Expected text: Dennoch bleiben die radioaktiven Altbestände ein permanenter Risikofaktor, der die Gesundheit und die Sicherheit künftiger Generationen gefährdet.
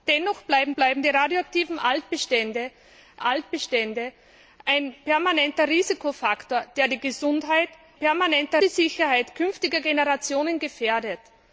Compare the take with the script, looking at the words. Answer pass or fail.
fail